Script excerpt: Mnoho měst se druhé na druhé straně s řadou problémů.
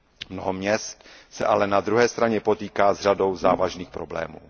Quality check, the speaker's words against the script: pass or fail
fail